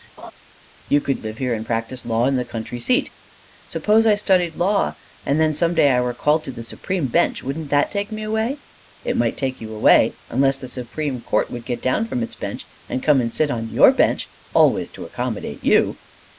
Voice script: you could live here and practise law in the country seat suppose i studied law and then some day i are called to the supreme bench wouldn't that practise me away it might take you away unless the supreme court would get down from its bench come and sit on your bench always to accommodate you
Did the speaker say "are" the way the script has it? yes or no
no